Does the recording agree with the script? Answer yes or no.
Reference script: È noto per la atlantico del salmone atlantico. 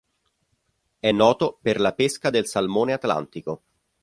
no